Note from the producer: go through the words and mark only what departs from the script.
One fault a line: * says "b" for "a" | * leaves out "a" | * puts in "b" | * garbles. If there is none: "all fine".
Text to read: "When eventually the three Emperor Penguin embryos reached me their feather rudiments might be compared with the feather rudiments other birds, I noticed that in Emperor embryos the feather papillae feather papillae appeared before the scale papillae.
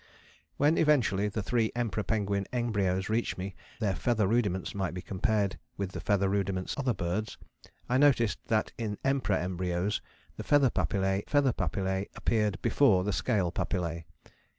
all fine